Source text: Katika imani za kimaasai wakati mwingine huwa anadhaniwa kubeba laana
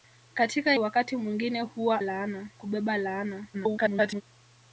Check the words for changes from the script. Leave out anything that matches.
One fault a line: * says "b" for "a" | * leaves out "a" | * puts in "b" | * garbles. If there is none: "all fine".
* leaves out "imani za kimaasai"
* says "laana" for "anadhaniwa"
* garbles